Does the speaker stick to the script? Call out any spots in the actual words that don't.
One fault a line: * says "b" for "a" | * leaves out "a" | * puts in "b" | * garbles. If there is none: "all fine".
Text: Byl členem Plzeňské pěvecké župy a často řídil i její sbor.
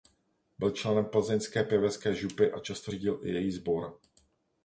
all fine